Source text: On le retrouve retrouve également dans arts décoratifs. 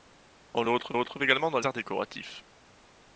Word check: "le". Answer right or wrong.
right